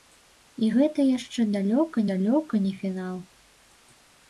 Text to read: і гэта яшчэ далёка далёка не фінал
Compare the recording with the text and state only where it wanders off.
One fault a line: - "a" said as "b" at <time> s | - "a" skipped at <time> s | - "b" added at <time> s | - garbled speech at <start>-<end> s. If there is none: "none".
none